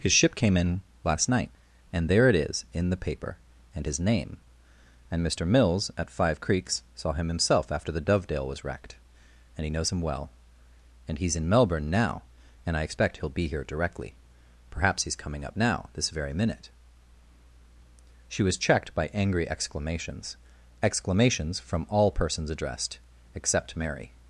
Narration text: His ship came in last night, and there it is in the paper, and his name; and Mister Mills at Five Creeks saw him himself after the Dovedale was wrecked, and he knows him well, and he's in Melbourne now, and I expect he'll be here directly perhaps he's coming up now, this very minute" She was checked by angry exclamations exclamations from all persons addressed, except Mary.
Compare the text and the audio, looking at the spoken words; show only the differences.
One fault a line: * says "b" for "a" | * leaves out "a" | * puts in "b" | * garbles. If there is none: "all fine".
all fine